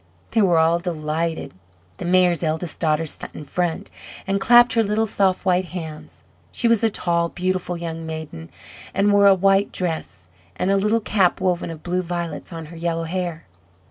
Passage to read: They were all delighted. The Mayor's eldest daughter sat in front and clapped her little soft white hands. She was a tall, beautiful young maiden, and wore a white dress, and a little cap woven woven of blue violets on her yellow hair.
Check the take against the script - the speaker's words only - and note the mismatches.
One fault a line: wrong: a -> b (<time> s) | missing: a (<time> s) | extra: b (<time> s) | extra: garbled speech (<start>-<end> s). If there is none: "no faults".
missing: woven (11.7 s)